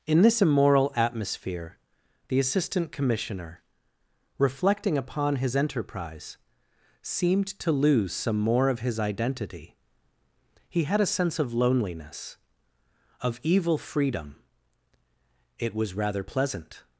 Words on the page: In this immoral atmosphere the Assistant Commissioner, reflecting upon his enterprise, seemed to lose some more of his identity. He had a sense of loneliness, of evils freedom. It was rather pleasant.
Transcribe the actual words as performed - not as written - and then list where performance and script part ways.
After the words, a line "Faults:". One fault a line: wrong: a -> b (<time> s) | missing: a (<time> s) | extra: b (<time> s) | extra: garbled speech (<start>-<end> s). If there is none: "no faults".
In this immoral atmosphere the Assistant Commissioner, reflecting upon his enterprise, seemed to lose some more of his identity. He had a sense of loneliness, of evil freedom. It was rather pleasant.
Faults:
wrong: evils -> evil (13.4 s)